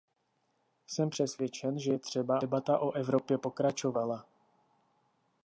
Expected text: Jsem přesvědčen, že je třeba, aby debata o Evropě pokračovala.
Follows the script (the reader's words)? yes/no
no